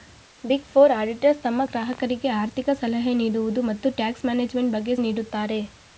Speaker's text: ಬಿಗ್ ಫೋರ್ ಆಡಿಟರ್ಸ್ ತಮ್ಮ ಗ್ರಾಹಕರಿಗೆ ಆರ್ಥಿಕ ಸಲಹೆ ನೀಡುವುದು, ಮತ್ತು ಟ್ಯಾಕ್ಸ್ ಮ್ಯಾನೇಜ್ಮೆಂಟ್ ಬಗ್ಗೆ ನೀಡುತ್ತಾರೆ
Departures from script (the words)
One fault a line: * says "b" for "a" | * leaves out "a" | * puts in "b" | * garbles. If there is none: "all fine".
all fine